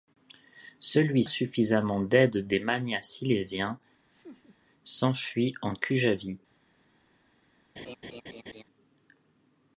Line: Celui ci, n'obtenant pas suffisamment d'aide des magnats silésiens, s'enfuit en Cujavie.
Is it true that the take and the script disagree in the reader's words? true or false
true